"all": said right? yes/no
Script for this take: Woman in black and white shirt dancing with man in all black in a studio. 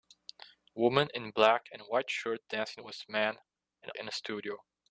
no